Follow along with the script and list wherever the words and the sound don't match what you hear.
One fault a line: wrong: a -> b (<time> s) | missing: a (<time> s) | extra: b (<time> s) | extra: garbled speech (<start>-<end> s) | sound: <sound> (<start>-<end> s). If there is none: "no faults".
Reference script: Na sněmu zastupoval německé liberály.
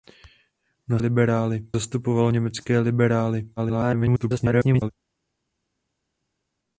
wrong: sněmu -> liberály (1.0 s)
extra: garbled speech (3.6-4.9 s)